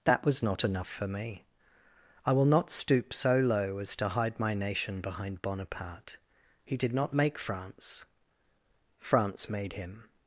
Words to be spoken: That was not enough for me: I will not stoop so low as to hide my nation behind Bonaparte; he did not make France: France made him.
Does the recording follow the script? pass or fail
pass